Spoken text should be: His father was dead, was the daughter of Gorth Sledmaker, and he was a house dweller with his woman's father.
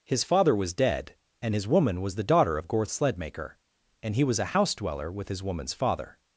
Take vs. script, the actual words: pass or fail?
fail